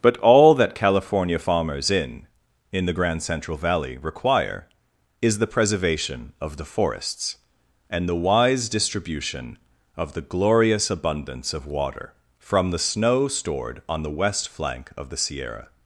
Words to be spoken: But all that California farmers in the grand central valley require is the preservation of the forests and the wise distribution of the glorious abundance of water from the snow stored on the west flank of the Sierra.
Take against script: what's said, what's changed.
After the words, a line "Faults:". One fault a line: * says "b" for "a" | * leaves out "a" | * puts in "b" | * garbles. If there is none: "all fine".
But all that California farmers in in the grand central valley require is the preservation of the forests and the wise distribution of the glorious abundance of water from the snow stored on the west flank of the Sierra.
Faults:
* puts in "in"